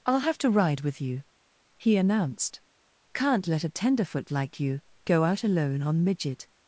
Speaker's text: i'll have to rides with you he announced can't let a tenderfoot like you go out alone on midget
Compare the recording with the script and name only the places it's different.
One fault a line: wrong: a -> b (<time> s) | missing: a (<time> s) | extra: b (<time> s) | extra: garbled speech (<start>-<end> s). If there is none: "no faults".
wrong: rides -> ride (0.5 s)